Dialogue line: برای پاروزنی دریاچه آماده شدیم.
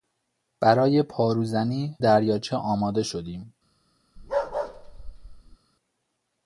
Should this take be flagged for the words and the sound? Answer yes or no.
yes